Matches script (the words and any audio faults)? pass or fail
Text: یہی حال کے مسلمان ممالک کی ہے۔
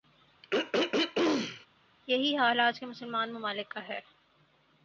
fail